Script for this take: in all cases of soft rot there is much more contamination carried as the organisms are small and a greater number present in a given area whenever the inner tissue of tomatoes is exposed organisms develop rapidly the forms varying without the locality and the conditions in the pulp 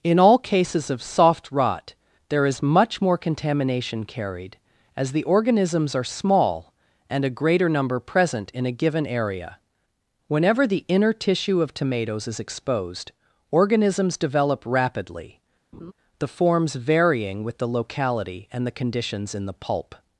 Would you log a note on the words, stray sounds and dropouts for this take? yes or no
yes